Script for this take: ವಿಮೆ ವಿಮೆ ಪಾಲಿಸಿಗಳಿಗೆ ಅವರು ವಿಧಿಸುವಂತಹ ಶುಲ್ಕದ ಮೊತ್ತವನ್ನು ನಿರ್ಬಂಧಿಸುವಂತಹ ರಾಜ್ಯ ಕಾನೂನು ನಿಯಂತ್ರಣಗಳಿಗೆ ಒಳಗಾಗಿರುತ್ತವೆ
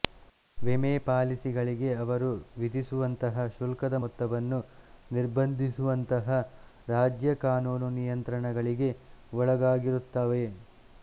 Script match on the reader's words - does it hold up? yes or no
no